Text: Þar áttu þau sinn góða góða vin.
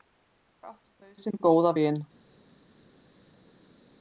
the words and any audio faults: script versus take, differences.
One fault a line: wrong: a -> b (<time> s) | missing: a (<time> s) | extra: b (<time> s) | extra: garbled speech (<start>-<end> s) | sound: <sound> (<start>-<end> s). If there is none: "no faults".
missing: góða (1.8 s)